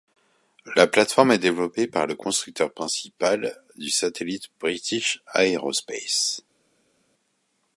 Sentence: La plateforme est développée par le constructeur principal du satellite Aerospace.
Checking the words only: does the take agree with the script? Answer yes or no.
no